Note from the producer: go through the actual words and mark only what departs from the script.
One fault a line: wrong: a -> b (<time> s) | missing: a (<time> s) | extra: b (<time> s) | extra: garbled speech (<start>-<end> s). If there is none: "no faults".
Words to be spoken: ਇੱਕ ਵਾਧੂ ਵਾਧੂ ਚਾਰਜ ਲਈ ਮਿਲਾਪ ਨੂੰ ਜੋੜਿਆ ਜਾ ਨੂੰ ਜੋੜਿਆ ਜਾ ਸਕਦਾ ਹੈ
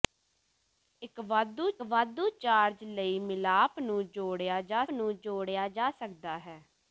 no faults